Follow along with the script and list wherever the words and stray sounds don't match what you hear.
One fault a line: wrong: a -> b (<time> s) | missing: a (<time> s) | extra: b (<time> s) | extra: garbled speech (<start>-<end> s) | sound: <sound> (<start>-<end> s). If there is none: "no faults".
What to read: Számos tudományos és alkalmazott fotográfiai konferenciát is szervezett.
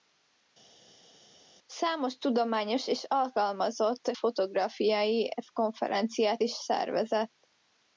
no faults